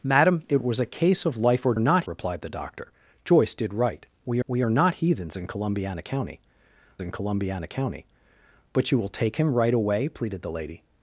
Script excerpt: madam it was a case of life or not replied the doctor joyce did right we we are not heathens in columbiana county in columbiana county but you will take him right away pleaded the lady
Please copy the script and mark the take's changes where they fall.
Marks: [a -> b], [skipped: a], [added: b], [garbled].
madam it was a case of life or not replied the doctor joyce did right we we are not heathens in columbiana county in columbiana county but you will take him right away pleaded the lady